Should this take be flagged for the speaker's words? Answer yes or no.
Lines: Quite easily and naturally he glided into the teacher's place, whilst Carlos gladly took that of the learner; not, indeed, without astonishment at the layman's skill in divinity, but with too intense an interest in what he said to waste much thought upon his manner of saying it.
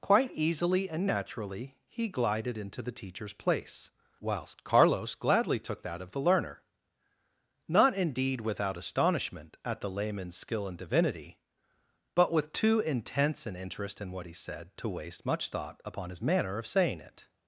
no